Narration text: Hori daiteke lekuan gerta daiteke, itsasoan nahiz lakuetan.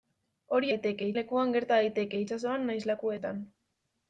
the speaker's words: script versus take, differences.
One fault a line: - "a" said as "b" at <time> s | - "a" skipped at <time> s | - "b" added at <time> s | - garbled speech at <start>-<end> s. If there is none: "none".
none